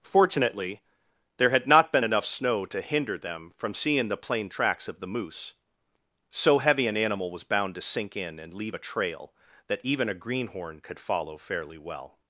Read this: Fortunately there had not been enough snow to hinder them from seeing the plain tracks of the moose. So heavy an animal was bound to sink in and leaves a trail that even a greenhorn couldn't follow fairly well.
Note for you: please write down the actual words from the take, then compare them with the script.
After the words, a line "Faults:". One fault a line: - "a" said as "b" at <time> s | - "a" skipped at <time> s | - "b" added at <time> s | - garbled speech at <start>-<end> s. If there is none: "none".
Fortunately there had not been enough snow to hinder them from seeing the plain tracks of the moose. So heavy an animal was bound to sink in and leave a trail that even a greenhorn could follow fairly well.
Faults:
- "leaves" said as "leave" at 8.5 s
- "couldn't" said as "could" at 10.8 s